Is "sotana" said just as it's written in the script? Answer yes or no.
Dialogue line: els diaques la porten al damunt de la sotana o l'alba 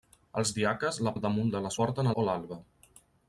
no